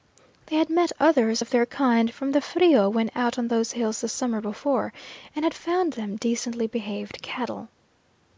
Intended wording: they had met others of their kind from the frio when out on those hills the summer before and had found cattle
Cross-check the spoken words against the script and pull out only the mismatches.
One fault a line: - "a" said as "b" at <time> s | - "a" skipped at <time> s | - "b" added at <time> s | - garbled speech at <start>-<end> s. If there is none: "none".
- "them decently behaved" added at 5.9 s